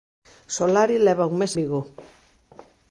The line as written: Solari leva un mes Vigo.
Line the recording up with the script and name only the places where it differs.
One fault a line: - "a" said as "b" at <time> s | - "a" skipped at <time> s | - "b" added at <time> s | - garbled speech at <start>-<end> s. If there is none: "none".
none